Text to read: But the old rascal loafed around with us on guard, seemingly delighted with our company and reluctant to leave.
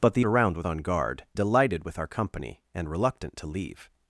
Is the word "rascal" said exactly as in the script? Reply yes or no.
no